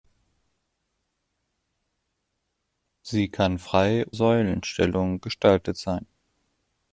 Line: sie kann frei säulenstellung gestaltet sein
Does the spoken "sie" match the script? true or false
true